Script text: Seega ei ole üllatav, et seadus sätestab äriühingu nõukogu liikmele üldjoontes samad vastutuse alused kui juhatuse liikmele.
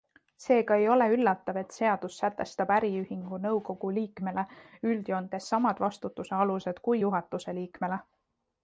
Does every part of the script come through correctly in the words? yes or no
yes